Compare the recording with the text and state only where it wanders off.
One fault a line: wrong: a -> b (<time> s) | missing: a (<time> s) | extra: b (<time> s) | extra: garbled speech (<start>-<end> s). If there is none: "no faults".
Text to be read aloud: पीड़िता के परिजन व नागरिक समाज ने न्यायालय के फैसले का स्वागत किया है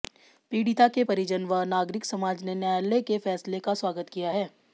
no faults